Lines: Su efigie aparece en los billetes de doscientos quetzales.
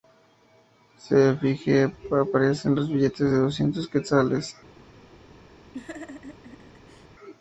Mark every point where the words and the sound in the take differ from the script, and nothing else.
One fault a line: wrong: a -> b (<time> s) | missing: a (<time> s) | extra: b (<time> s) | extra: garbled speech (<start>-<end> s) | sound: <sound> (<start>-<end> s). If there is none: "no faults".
sound: laugh (5.7-7.1 s)